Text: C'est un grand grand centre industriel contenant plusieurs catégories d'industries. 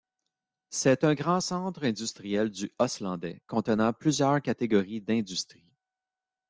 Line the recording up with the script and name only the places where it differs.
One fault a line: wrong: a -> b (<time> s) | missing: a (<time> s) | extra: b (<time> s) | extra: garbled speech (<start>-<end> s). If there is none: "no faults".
missing: grand (1.4 s)
extra: du Østlandet (2.5 s)